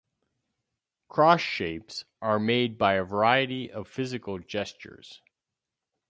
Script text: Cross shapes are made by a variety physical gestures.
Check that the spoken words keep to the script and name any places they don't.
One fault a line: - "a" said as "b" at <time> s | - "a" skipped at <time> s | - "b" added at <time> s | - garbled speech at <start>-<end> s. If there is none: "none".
- "of" added at 3.7 s